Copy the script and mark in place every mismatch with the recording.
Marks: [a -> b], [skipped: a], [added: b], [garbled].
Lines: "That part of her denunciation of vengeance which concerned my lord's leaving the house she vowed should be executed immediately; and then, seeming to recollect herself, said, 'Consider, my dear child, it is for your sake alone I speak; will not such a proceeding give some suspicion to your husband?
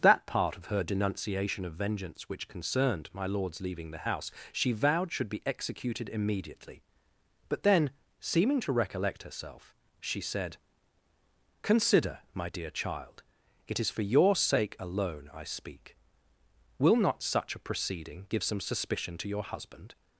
"That part of her denunciation of vengeance which concerned my lord's leaving the house she vowed should be executed immediately; [and -> but] then, seeming to recollect herself, [added: she] said, 'Consider, my dear child, it is for your sake alone I speak; will not such a proceeding give some suspicion to your husband?